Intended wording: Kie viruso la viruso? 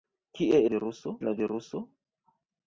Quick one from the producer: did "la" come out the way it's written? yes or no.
yes